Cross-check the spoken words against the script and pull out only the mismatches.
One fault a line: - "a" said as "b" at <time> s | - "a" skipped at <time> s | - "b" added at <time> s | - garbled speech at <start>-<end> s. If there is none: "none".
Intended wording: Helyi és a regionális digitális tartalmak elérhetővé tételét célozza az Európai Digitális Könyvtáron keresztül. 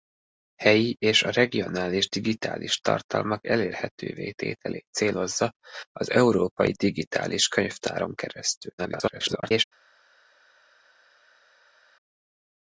- garbled speech at 8.8-9.6 s